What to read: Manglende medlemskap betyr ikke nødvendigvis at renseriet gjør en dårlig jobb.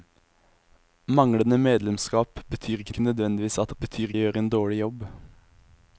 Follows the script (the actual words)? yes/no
no